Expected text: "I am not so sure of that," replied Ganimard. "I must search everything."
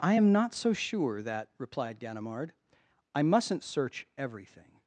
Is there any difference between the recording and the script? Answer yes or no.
yes